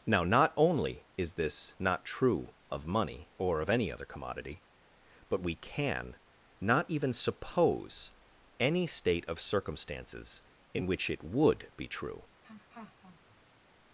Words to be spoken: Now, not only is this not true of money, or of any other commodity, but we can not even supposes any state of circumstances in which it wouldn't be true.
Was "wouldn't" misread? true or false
true